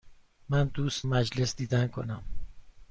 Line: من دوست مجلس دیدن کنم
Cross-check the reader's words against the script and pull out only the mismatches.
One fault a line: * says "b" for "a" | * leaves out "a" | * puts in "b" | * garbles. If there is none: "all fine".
all fine